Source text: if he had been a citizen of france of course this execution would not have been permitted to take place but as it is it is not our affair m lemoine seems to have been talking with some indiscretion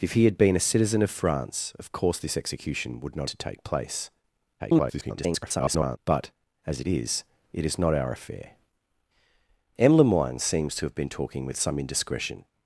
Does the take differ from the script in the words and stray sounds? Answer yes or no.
yes